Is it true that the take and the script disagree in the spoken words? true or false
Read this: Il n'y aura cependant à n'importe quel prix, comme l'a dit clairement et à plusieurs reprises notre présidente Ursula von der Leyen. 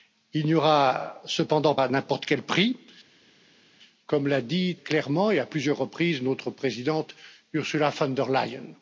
false